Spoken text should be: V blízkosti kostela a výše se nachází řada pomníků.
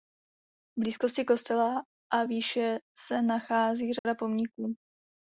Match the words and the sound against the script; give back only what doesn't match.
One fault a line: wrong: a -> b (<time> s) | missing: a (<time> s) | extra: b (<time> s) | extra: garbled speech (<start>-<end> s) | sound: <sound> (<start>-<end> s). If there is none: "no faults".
sound: dropout (4.0-4.1 s)